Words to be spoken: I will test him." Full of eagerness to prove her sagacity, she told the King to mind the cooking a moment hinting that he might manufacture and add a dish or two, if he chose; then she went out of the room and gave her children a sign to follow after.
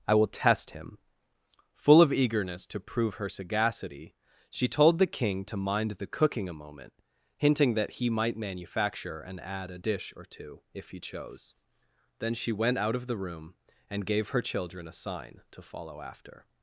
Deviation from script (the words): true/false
false